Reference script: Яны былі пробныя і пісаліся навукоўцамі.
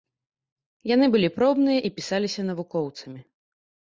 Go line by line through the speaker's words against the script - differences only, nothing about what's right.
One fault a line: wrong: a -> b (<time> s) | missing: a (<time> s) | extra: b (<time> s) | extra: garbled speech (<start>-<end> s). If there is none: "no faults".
no faults